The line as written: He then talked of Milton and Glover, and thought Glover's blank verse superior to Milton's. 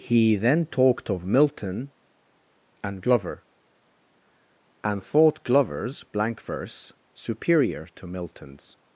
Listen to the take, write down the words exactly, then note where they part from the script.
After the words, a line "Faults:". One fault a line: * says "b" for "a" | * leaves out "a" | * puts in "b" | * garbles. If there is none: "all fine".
He then talked of Milton and Glover, and thought Glover's blank verse superior to Milton's.
Faults:
all fine